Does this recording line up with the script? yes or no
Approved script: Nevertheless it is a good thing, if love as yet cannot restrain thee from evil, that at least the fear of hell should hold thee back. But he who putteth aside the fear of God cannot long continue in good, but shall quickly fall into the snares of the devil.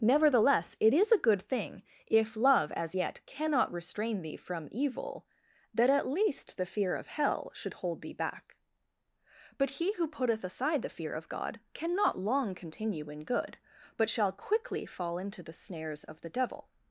yes